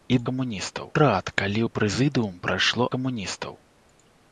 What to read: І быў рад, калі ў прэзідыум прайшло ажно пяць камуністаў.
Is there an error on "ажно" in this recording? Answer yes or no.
yes